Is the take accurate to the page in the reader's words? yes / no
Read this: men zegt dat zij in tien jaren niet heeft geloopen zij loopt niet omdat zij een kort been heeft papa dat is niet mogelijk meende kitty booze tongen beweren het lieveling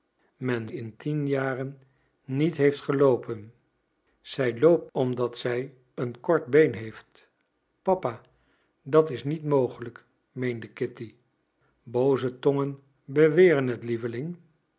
no